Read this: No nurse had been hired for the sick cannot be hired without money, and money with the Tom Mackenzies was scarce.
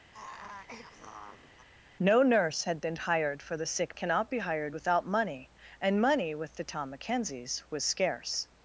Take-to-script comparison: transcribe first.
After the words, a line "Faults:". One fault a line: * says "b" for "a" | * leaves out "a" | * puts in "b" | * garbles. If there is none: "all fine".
No nurse had been hired for the sick cannot be hired without money, and money with the Tom Mackenzies was scarce.
Faults:
all fine